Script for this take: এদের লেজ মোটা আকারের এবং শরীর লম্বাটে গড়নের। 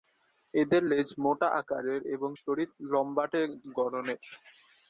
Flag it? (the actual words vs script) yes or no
no